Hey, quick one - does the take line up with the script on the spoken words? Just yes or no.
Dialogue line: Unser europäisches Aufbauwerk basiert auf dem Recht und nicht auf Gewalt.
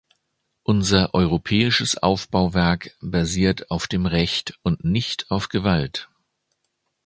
yes